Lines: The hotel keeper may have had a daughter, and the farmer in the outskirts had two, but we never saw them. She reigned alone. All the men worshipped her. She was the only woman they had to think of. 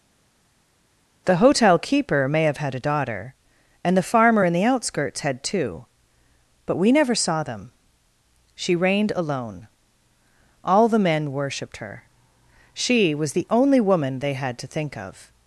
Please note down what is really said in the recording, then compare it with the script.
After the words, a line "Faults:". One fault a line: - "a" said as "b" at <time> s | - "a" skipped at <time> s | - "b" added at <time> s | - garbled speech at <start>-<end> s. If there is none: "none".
The hotel keeper may have had a daughter, and the farmer in the outskirts had two, but we never saw them. She reigned alone. All the men worshipped her. She was the only woman they had to think of.
Faults:
none